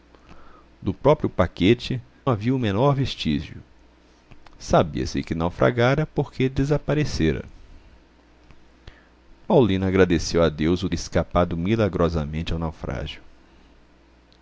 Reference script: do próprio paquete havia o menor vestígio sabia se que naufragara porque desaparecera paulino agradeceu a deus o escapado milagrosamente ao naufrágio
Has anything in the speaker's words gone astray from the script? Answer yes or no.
no